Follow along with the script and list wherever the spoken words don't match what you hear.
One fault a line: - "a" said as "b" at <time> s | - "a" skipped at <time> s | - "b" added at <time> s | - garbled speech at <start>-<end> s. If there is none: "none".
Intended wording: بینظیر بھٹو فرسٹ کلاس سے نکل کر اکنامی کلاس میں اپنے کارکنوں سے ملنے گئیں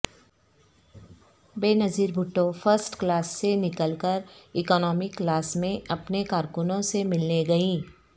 none